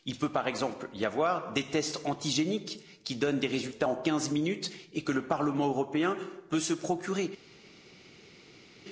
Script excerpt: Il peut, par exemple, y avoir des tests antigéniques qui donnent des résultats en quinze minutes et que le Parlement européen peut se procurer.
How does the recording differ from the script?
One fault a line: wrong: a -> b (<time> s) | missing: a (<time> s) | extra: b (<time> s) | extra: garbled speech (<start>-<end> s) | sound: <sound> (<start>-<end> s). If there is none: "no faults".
no faults